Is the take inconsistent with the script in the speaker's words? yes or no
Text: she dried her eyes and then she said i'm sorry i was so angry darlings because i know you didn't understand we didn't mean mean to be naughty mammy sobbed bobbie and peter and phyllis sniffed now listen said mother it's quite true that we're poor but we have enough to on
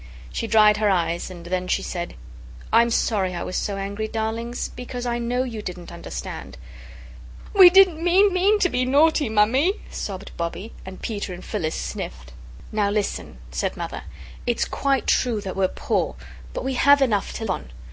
no